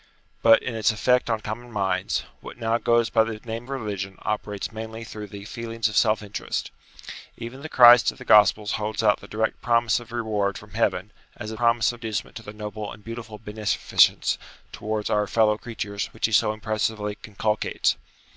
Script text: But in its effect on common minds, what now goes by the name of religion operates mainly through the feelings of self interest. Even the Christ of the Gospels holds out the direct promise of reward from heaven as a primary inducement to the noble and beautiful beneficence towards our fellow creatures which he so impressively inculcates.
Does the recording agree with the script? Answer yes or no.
no